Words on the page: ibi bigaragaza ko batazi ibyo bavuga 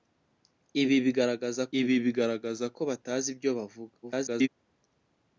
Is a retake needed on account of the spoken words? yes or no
yes